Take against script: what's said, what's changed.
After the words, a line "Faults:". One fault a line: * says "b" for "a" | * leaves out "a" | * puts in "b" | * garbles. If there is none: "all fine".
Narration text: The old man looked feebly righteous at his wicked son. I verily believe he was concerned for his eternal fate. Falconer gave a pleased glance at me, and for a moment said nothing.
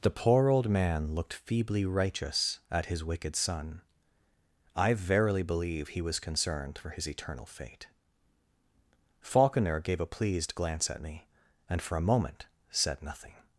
The poor old man looked feebly righteous at his wicked son. I verily believe he was concerned for his eternal fate. Falconer gave a pleased glance at me, and for a moment said nothing.
Faults:
* puts in "poor"